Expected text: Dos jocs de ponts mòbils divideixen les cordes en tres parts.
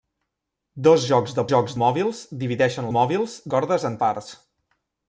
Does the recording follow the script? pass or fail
fail